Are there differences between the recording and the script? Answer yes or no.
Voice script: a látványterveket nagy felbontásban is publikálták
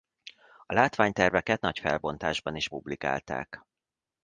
no